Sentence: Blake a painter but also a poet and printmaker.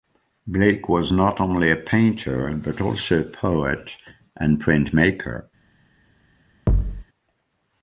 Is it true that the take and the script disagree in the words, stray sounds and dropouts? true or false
true